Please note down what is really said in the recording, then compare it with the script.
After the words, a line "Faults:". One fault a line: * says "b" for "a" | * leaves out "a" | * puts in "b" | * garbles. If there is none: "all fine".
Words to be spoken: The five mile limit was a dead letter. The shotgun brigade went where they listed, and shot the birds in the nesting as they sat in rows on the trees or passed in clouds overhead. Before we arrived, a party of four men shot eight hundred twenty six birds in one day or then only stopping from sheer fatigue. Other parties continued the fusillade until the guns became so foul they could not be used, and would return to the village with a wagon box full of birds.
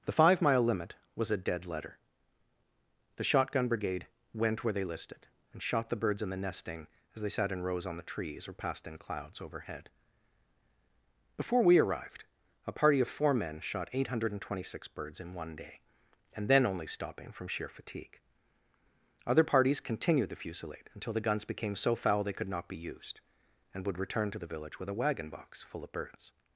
The five mile limit was a dead letter. The shotgun brigade went where they listed, and shot the birds in the nesting as they sat in rows on the trees or passed in clouds overhead. Before we arrived, a party of four men shot eight hundred twenty six birds in one day and then only stopping from sheer fatigue. Other parties continued the fusillade until the guns became so foul they could not be used, and would return to the village with a wagon box full of birds.
Faults:
* says "and" for "or"